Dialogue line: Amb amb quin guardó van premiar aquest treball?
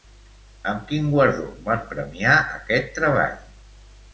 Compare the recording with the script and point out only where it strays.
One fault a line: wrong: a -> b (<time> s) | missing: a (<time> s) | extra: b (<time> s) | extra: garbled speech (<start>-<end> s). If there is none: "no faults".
missing: amb (0.9 s)